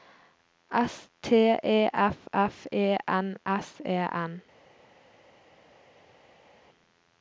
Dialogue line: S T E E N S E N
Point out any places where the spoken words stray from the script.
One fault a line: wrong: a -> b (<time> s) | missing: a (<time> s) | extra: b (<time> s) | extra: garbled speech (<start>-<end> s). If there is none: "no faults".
extra: F F (1.9 s)